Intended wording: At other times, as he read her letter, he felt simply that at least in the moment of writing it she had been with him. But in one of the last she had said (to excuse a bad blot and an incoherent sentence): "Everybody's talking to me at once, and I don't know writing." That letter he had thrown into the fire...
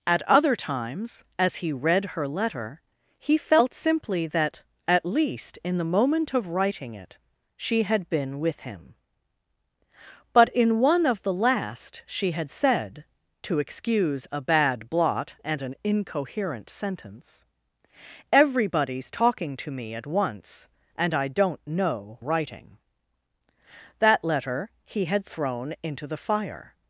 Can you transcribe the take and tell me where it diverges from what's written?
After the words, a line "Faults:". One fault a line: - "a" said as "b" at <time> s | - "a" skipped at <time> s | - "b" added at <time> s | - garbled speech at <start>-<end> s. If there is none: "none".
At other times, as he read her letter, he felt simply that at least in the moment of writing it she had been with him. But in one of the last she had said (to excuse a bad blot and an incoherent sentence): "Everybody's talking to me at once, and I don't know writing." That letter he had thrown into the fire...
Faults:
none